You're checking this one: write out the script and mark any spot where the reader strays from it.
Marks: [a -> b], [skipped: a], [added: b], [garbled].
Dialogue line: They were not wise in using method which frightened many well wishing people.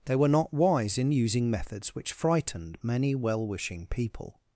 They were not wise in using [method -> methods] which frightened many well wishing people.